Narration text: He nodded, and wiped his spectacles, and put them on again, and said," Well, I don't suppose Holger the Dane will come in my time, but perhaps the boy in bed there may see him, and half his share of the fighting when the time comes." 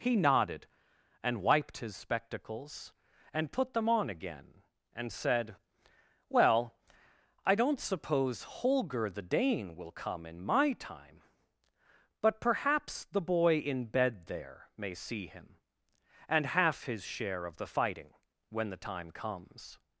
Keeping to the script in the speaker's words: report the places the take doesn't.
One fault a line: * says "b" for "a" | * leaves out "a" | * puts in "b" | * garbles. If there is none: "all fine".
all fine